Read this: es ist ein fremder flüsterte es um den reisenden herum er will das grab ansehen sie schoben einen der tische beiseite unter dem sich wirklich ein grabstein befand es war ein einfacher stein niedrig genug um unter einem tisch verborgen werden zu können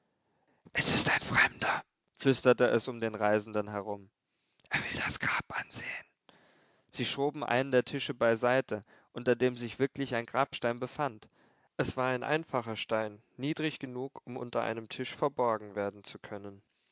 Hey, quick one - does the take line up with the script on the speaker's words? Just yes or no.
yes